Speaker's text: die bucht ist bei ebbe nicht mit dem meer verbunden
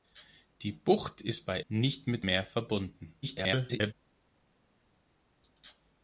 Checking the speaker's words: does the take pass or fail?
fail